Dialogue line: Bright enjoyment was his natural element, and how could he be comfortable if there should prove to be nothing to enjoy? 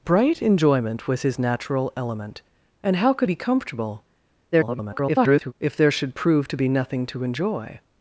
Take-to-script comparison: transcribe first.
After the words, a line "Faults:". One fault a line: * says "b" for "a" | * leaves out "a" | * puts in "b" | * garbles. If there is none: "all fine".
Bright enjoyment was his natural element, and how could be comfortable [garbled] if there should prove to be nothing to enjoy?
Faults:
* leaves out "he"
* garbles